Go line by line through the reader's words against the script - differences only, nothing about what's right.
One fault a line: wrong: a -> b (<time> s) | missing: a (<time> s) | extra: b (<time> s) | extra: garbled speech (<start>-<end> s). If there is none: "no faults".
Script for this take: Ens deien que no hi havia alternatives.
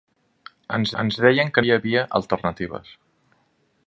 extra: ens (1.0 s)
missing: no (1.6 s)